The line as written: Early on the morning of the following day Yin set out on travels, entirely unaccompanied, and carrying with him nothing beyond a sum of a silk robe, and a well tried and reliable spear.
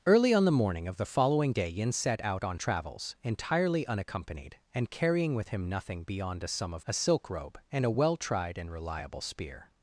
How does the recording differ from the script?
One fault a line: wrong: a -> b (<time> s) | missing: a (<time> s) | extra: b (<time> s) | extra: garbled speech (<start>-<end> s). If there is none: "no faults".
no faults